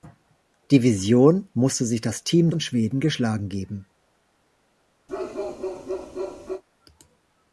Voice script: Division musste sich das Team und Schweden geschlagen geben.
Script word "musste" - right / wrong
right